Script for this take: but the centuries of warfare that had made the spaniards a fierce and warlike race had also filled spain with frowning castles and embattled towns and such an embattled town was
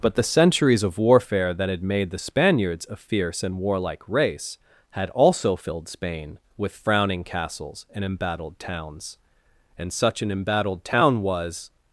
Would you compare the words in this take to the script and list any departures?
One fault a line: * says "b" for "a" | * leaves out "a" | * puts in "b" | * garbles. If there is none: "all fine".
all fine